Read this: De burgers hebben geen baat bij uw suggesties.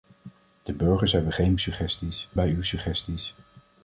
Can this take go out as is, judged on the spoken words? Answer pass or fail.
fail